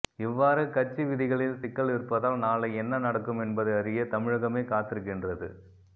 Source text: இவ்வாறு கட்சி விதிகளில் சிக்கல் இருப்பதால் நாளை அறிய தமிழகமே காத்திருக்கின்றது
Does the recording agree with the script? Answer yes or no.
no